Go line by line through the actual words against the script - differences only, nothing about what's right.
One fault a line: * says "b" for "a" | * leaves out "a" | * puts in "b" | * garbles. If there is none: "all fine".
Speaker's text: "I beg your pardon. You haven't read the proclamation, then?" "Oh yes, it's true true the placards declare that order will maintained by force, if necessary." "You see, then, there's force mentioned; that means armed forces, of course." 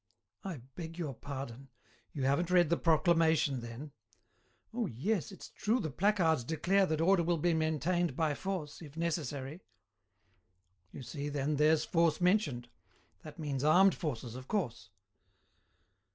* leaves out "true"
* puts in "be"